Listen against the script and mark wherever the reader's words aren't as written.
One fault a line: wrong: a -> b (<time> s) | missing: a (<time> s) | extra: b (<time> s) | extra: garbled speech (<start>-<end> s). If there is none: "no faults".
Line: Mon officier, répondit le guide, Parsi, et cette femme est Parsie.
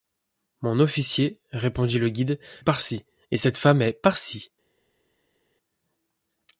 no faults